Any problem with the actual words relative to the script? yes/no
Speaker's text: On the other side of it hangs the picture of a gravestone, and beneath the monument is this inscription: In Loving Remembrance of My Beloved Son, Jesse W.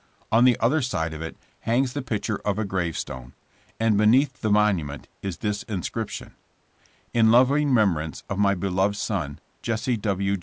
no